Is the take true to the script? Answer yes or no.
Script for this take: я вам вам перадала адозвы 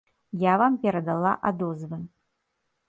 no